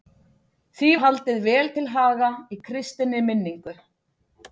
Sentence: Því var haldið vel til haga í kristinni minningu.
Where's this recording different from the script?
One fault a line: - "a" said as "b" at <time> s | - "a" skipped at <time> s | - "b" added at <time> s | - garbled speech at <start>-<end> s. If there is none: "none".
- "var" skipped at 0.9 s